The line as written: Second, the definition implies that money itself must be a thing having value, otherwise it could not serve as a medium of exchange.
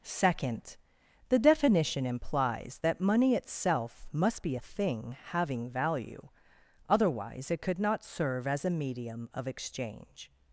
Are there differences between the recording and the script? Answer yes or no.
no